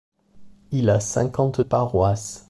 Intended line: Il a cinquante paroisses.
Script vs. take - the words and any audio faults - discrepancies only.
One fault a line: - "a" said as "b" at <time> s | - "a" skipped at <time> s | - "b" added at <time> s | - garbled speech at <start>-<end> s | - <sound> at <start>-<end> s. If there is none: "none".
none